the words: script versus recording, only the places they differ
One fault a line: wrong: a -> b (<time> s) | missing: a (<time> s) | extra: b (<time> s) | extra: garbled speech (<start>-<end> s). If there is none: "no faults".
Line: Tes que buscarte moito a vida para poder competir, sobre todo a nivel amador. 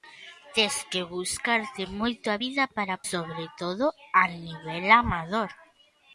missing: poder competir (3.0 s)